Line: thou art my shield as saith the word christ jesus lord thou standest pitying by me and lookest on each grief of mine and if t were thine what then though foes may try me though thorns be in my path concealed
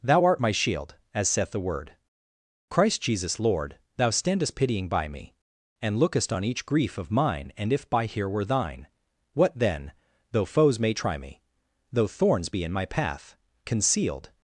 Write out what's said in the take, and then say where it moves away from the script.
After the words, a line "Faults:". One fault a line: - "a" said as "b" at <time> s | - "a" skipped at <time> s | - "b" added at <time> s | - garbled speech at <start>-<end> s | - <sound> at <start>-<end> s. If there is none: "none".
thou art my shield as saith the word christ jesus lord thou standest pitying by me and lookest on each grief of mine and if by here were thine what then though foes may try me though thorns be in my path concealed
Faults:
- "t" said as "by here" at 7.9 s